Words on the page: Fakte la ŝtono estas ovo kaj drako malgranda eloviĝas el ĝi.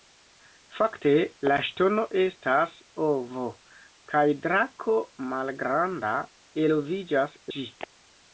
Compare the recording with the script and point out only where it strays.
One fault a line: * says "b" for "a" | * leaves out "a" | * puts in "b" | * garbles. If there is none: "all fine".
* leaves out "el"